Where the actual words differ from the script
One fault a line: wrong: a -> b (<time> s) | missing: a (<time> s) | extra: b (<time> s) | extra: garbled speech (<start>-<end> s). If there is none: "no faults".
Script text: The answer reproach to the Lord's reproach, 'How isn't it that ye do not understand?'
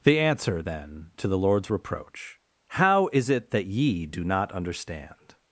wrong: reproach -> then (0.6 s)
wrong: isn't -> is (3.1 s)